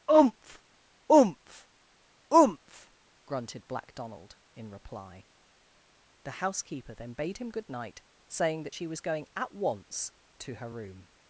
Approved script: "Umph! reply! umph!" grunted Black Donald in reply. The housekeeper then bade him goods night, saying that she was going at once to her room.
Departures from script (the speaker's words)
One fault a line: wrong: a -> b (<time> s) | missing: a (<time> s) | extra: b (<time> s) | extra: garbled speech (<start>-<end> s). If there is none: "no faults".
wrong: reply -> umph (1.1 s)
wrong: goods -> good (7.5 s)